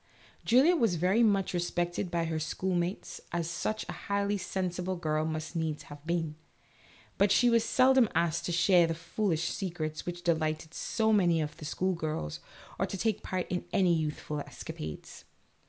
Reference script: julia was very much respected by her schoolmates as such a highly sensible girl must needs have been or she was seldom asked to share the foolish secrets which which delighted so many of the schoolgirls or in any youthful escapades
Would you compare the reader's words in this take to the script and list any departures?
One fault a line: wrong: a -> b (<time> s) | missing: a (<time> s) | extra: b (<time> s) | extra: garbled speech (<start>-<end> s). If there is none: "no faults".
wrong: or -> but (7.2 s)
missing: which (10.2 s)
extra: to take part (12.9 s)